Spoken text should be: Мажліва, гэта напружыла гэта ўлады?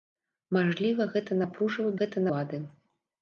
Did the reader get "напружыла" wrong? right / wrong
right